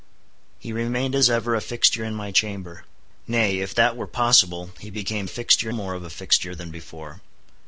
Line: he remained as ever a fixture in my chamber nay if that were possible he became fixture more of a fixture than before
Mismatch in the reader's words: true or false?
false